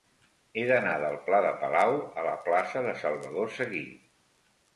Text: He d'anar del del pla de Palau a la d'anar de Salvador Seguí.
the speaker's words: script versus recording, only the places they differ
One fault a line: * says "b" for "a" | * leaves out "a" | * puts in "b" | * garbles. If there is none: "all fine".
* leaves out "del"
* says "plaça" for "d'anar"